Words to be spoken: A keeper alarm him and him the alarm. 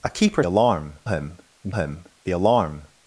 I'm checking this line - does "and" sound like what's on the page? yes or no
yes